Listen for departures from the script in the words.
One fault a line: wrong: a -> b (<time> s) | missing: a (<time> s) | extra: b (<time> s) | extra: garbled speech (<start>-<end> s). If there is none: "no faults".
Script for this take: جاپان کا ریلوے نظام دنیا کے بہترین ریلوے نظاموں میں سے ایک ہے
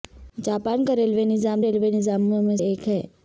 missing: دنیا کے بہترین (1.6 s)
missing: سے (2.6 s)